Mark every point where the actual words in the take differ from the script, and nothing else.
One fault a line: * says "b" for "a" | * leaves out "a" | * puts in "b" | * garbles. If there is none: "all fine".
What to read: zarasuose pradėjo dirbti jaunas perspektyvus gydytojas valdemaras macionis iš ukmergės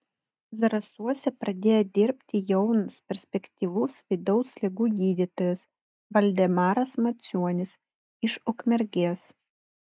* puts in "vidaus ligų"